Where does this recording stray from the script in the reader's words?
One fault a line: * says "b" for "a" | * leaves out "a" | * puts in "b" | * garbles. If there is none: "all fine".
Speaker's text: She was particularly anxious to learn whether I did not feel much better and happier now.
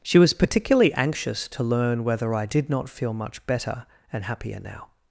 all fine